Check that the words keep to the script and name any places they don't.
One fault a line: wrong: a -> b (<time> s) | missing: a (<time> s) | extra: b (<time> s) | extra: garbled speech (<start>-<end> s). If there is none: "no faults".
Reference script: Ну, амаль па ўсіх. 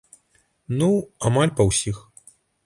no faults